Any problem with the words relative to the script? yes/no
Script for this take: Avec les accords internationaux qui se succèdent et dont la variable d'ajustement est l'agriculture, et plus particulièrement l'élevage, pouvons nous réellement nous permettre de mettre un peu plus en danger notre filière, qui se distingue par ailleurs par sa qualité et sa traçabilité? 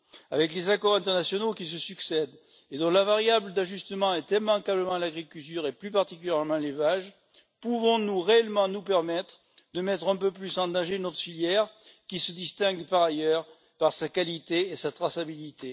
yes